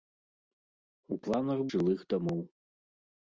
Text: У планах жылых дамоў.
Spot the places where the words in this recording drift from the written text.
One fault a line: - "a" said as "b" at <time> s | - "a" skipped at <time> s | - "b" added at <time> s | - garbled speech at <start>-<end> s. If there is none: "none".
none